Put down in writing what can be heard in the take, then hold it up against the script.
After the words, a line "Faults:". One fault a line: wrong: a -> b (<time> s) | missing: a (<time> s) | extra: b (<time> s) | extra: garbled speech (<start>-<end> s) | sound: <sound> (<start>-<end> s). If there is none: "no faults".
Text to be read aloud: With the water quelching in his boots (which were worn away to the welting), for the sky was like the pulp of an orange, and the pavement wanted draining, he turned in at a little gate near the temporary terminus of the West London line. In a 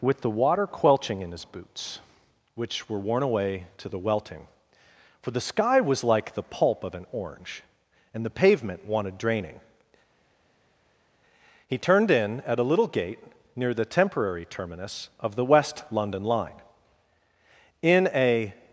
With the water quelching in his boots (which were worn away to the welting), for the sky was like the pulp of an orange, and the pavement wanted draining, he turned in at a little gate near the temporary terminus of the West London line. In a
Faults:
no faults